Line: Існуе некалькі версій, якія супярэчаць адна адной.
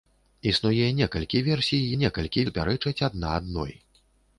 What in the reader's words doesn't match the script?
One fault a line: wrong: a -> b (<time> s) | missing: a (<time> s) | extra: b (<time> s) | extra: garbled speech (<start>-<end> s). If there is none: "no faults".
wrong: якія -> некалькі (2.0 s)